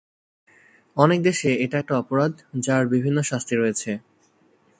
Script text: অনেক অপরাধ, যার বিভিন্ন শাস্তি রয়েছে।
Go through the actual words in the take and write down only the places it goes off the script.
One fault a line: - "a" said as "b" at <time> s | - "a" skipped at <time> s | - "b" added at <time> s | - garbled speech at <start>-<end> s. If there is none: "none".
- "দেশে এটা একটা" added at 1.2 s